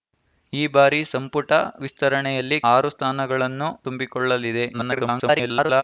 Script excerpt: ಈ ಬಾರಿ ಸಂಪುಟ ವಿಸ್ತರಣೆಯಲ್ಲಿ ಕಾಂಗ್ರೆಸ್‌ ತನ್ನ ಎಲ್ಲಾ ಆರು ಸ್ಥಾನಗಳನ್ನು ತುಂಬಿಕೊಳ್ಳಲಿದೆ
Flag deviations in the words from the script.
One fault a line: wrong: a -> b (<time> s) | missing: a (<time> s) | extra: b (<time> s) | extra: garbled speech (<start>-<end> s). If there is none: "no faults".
missing: ಕಾಂಗ್ರೆಸ್ ತನ್ನ ಎಲ್ಲಾ (2.6 s)
extra: garbled speech (4.7-5.8 s)